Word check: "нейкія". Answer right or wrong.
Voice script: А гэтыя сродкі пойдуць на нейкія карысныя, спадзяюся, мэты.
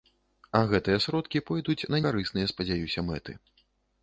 wrong